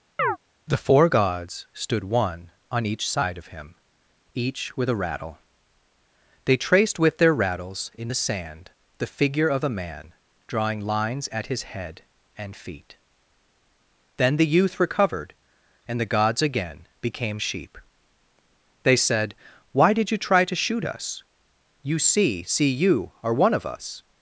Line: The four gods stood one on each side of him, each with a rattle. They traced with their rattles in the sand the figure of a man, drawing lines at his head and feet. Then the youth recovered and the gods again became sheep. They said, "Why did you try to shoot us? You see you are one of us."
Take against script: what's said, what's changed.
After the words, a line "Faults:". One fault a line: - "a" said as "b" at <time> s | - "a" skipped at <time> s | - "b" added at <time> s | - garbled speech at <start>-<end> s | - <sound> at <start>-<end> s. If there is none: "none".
The four gods stood one on each side of him, each with a rattle. They traced with their rattles in the sand the figure of a man, drawing lines at his head and feet. Then the youth recovered and the gods again became sheep. They said, "Why did you try to shoot us? You see see you are one of us."
Faults:
- chirp at 0.2-0.4 s
- "see" added at 22.4 s